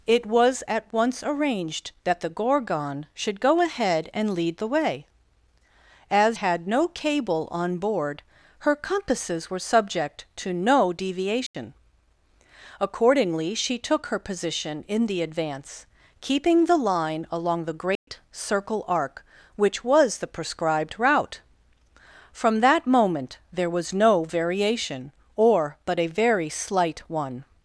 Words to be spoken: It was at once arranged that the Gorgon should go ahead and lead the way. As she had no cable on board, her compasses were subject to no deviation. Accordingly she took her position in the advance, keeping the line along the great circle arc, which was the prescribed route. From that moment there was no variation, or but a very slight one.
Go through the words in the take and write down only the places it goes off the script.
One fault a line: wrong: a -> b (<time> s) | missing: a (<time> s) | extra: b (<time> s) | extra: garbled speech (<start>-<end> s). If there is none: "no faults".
missing: she (6.4 s)